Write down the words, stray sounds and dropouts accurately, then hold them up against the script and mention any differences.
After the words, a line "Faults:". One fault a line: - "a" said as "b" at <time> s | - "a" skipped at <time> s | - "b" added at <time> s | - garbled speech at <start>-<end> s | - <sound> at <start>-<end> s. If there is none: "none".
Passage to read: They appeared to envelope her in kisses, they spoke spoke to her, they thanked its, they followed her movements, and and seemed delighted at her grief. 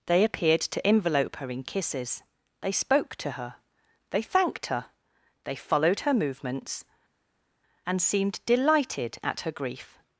They appeared to envelope her in kisses, they spoke to her, they thanked her, they followed her movements, and seemed delighted at her grief.
Faults:
- "spoke" skipped at 3.2 s
- "its" said as "her" at 4.7 s
- "and" skipped at 8.0 s